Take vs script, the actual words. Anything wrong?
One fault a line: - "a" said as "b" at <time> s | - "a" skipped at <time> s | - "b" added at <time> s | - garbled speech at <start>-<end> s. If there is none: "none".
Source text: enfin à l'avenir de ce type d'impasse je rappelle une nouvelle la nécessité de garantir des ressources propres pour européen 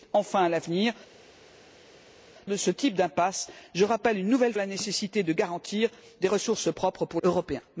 none